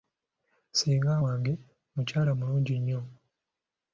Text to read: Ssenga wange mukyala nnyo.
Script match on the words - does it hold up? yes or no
no